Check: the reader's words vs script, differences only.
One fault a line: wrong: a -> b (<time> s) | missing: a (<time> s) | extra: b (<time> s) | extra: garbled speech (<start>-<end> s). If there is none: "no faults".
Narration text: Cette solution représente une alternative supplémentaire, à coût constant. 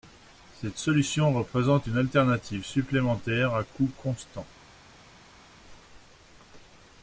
no faults